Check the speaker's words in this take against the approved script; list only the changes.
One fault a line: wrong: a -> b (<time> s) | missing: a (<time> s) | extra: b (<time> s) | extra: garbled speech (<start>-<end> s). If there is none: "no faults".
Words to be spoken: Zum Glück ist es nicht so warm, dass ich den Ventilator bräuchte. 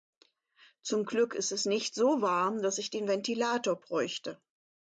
no faults